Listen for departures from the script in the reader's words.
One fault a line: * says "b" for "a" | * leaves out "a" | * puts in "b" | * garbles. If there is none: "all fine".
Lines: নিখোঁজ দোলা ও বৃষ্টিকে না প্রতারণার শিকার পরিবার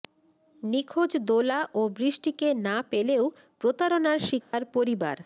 * puts in "পেলেও"